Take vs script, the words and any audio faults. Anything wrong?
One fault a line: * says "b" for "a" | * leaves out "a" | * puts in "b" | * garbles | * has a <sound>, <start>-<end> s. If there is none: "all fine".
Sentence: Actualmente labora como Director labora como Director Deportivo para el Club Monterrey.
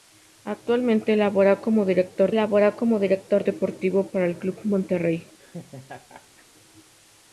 * has a laugh, 5.4-6.5 s